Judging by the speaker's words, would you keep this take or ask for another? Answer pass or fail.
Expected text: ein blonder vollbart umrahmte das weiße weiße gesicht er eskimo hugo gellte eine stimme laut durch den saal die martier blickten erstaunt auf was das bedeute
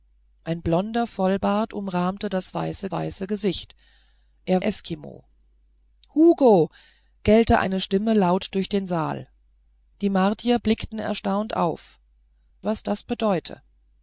pass